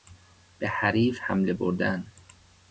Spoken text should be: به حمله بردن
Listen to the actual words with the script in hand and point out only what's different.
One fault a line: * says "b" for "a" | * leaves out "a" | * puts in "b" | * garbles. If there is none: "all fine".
* puts in "حریف"